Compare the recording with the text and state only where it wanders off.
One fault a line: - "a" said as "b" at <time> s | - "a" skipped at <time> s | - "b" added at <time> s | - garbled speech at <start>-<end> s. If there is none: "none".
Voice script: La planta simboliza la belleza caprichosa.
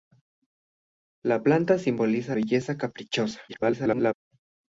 - "la" skipped at 2.4 s
- garbled speech at 3.5-4.1 s